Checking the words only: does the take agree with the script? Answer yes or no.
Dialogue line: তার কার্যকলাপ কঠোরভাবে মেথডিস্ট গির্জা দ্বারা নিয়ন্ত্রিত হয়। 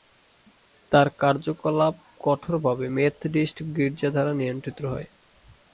yes